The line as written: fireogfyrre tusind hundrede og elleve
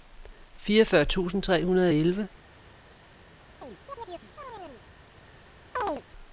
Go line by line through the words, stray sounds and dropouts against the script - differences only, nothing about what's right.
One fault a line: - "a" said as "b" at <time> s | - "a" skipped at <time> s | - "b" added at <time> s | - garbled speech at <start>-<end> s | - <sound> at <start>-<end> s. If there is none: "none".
- "tre" added at 1.4 s
- chirp at 3.6-4.9 s
- chirp at 5.8-6.0 s